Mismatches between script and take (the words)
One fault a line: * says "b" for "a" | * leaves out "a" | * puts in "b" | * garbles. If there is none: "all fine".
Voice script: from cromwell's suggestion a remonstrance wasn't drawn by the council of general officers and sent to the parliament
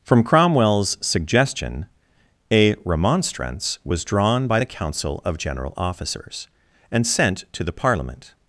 * says "was" for "wasn't"